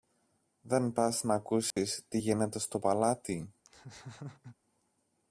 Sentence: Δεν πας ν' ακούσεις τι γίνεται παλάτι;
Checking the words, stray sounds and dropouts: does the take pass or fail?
fail